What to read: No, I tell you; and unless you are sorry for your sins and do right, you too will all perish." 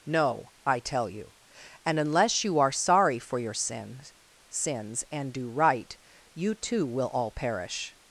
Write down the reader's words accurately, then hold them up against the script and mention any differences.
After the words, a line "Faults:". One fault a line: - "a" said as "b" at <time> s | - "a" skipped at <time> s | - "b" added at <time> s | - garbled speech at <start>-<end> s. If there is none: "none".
No, I tell you; and unless you are sorry for your sins sins and do right, you too will all perish."
Faults:
- "sins" added at 4.5 s